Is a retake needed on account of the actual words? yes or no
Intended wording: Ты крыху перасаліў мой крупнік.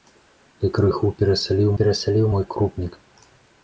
yes